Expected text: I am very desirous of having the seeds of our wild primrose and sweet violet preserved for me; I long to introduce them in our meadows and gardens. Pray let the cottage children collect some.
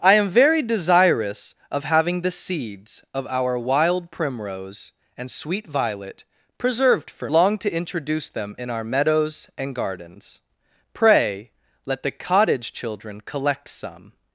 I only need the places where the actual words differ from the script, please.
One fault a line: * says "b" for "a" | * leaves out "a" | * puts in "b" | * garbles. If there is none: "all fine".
* leaves out "me I"